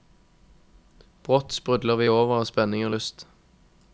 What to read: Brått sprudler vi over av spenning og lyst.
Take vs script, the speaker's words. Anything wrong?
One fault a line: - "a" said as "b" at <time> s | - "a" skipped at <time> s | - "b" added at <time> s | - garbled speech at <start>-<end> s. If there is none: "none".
none